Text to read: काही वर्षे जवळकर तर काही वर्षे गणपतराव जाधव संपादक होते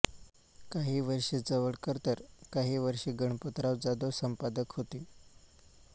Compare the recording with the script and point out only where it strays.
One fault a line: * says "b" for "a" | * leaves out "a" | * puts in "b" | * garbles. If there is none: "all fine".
all fine